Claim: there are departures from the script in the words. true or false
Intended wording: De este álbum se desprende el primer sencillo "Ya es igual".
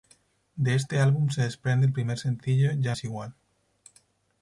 false